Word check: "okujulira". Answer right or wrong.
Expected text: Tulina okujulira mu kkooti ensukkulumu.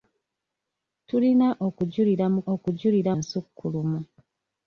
right